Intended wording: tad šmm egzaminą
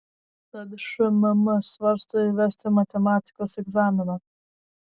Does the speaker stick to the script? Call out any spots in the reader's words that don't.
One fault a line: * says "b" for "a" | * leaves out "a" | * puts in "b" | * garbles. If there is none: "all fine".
* puts in "svarsto įvesti matematikos"